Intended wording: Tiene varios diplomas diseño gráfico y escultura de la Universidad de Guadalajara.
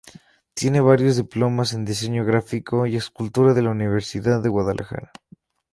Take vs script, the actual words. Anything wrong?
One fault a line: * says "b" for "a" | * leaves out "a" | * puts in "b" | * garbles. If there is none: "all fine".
* puts in "en"